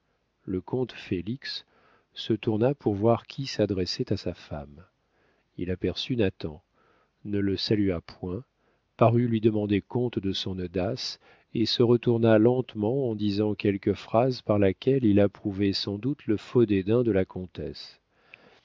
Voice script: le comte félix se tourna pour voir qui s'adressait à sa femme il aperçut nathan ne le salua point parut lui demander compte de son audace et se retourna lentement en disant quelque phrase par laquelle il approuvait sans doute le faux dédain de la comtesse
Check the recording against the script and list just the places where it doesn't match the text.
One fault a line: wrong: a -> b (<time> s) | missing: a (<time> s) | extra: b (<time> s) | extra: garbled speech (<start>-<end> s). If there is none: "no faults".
no faults